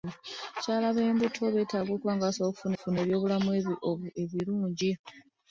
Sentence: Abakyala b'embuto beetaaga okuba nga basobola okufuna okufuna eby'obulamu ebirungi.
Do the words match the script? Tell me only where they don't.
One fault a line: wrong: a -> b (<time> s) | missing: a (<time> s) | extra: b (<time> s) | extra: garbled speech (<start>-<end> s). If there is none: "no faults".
no faults